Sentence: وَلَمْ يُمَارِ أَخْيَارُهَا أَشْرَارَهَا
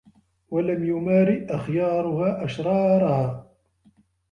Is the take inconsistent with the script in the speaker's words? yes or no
no